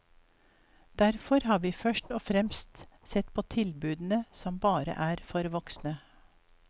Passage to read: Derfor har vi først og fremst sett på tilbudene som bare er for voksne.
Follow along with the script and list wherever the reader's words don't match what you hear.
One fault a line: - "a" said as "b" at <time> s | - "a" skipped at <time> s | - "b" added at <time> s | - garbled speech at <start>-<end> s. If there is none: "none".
none